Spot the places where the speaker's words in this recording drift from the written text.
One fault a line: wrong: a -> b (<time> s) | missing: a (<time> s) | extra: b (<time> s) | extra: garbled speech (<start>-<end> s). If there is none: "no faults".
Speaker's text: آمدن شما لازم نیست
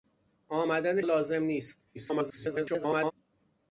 missing: شما (1.0 s)
extra: garbled speech (1.9-3.1 s)